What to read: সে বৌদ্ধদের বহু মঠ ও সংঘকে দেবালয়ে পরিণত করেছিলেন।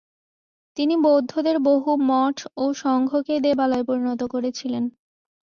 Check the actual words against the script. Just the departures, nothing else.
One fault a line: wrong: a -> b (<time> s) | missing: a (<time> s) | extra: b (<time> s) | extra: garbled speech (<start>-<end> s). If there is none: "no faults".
wrong: সে -> তিনি (0.8 s)